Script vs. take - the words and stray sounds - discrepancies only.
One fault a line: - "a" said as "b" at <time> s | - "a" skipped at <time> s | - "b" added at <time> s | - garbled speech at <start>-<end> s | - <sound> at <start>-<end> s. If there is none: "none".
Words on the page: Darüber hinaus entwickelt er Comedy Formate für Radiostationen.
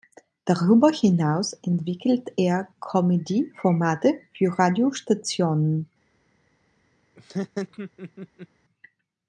- laugh at 7.2-8.5 s